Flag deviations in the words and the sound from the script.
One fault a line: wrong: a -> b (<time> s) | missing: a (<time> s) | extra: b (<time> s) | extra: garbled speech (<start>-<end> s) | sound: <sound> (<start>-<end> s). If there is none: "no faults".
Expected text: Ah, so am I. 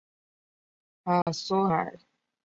sound: dropout (1.2-1.3 s)
missing: am (1.7 s)